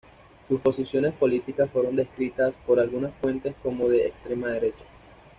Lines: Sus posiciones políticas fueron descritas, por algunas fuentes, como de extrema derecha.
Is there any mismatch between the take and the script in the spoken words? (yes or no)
no